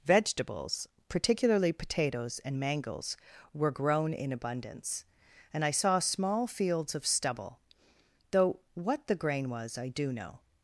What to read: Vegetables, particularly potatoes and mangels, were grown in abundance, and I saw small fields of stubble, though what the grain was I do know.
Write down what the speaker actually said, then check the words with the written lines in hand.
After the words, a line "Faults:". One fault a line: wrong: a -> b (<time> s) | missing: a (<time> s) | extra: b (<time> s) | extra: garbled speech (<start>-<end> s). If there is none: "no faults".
Vegetables, particularly potatoes and mangels, were grown in abundance, and I saw small fields of stubble, though what the grain was I do know.
Faults:
no faults